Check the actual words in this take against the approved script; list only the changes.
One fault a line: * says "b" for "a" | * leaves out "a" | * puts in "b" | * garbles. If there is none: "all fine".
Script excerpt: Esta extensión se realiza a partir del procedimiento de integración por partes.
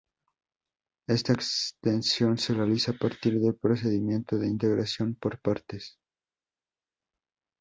all fine